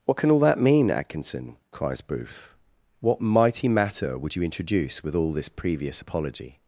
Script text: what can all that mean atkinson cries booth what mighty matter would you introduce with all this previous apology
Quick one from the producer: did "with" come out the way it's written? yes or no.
yes